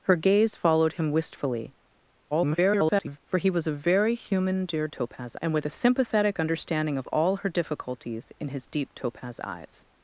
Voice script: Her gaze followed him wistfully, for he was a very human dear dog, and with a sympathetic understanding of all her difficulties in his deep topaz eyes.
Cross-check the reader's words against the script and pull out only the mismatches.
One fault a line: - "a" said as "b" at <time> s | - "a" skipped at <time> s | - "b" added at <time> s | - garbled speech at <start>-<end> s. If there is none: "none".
- garbled speech at 2.3-3.2 s
- "dog" said as "topaz" at 4.9 s